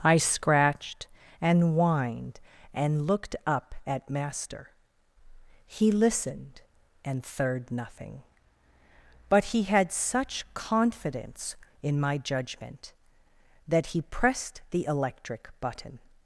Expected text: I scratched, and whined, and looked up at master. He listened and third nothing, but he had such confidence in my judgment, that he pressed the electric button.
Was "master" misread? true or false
false